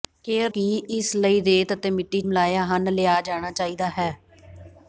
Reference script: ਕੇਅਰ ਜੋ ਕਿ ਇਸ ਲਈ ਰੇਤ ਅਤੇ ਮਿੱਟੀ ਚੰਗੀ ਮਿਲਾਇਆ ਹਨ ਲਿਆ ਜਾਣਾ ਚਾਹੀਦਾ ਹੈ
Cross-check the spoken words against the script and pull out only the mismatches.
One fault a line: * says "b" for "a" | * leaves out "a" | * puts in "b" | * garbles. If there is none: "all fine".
* leaves out "ਜੋ"
* leaves out "ਚੰਗੀ"